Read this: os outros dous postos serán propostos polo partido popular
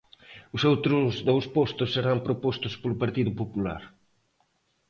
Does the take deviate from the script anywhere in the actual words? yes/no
no